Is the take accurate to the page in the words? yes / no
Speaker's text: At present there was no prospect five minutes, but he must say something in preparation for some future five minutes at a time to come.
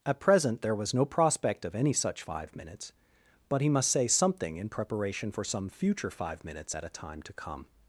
no